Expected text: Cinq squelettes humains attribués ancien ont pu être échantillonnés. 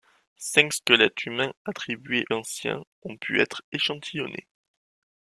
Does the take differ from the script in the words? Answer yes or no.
no